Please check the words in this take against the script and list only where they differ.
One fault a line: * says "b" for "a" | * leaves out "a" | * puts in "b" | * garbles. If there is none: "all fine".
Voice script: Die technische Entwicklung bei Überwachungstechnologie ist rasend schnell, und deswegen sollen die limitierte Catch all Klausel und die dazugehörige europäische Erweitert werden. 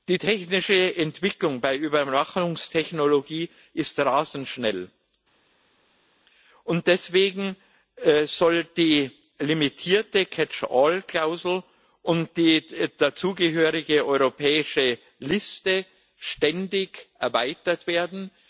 * puts in "Liste ständig"